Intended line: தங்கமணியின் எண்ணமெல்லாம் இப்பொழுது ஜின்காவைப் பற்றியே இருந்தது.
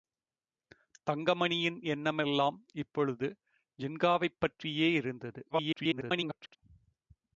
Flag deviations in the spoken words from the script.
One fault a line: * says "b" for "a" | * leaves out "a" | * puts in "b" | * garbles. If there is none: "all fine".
* garbles